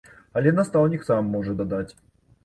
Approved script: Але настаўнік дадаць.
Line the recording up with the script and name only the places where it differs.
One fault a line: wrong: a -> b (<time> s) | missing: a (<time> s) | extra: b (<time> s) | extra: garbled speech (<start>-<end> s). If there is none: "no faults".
extra: сам можа (1.0 s)